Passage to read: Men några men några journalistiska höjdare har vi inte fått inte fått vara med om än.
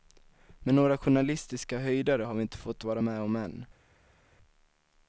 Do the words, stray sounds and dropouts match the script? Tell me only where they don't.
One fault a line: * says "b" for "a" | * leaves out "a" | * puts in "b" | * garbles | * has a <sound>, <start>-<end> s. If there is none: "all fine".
* leaves out "men några"
* leaves out "inte fått"